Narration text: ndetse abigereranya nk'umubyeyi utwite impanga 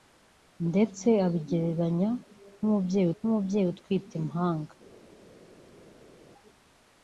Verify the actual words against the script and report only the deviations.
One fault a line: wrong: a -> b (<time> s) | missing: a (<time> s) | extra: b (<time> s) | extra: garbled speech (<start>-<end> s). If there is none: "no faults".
extra: nk'umubyeyi (3.2 s)